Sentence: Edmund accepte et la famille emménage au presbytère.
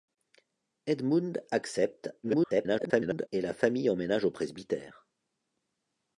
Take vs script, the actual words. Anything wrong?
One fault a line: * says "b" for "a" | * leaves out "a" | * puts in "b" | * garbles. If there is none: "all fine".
* garbles